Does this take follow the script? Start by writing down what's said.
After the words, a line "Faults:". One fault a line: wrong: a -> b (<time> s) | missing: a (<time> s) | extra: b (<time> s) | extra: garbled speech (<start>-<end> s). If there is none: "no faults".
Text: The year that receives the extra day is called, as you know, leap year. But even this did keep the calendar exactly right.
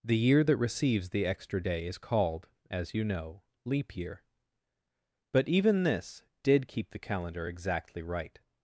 The year that receives the extra day is called, as you know, leap year. But even this did keep the calendar exactly right.
Faults:
no faults